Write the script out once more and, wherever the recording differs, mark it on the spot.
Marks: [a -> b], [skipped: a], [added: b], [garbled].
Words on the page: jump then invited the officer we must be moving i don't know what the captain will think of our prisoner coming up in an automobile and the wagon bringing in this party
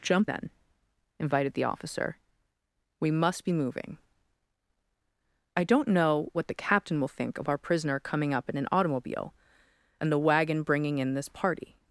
jump then invited the officer we must be moving i don't know what the captain will think of our prisoner coming up in an automobile and the wagon bringing in this party